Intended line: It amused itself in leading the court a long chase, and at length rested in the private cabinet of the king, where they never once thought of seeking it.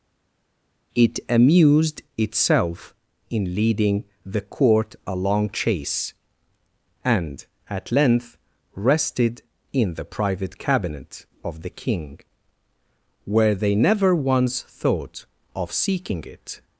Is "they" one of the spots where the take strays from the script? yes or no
no